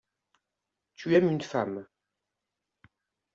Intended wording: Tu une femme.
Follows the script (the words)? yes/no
no